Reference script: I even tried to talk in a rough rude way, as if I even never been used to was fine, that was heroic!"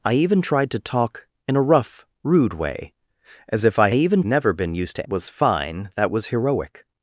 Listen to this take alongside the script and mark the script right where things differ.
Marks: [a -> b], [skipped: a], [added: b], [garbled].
I even tried to talk in a rough rude way, as if I even never been used to was fine, that was heroic!"